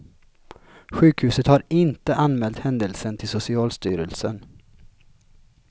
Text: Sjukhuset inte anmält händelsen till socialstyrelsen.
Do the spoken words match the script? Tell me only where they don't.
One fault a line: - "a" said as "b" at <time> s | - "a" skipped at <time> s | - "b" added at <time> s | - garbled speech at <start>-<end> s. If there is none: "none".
- "har" added at 1.5 s